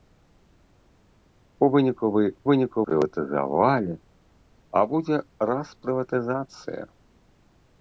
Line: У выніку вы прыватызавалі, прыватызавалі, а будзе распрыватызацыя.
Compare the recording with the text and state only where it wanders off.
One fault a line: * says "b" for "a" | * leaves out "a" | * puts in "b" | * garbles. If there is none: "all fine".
* says "выніку" for "прыватызавалі"